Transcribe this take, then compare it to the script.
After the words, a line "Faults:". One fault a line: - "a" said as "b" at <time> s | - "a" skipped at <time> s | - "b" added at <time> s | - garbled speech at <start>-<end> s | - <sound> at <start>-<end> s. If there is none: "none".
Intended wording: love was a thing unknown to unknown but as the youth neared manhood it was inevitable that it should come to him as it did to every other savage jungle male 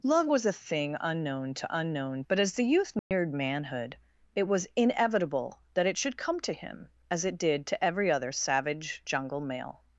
love was a thing unknown to unknown but as the youth neared manhood it was inevitable that it should come to him as it did to every other savage jungle male
Faults:
- dropout at 3.0-3.1 s